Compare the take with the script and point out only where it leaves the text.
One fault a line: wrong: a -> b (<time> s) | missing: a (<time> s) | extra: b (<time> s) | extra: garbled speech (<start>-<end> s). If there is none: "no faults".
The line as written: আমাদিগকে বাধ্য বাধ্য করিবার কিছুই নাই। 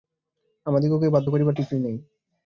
missing: বাধ্য (1.3 s)